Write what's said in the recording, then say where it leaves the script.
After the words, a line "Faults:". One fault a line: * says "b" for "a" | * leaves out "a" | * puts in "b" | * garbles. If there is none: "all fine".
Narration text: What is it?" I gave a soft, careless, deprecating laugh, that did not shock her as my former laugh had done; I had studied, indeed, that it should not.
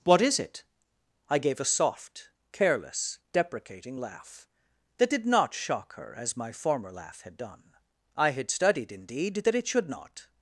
What is it?" I gave a soft, careless, deprecating laugh, that did not shock her as my former laugh had done; I had studied, indeed, that it should not.
Faults:
all fine